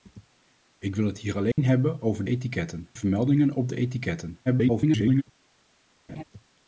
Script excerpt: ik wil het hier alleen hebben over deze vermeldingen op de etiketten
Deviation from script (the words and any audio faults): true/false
true